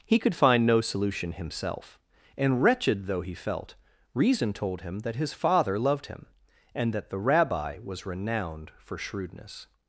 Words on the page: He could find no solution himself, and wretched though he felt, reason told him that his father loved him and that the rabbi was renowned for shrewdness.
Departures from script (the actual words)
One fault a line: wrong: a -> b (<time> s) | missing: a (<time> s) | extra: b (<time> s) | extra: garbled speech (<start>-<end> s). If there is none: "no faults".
no faults